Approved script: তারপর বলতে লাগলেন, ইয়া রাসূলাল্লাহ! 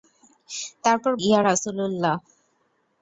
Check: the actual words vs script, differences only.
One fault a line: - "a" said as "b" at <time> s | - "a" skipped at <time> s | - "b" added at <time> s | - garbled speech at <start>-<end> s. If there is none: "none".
- "বলতে লাগলেন" skipped at 1.1 s